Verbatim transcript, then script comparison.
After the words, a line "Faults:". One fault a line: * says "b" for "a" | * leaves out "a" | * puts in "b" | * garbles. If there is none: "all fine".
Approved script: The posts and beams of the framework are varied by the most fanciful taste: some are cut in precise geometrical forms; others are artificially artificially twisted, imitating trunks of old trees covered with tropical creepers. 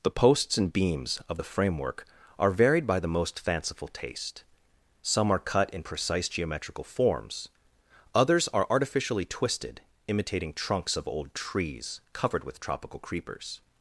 The posts and beams of the framework are varied by the most fanciful taste: some are cut in precise geometrical forms; others are artificially twisted, imitating trunks of old trees covered with tropical creepers.
Faults:
* leaves out "artificially"